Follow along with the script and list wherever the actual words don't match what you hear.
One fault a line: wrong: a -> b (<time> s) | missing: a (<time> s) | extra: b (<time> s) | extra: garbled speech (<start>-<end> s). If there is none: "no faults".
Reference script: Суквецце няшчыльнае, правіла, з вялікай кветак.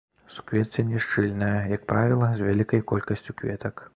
extra: як (1.8 s)
extra: колькасцю (2.9 s)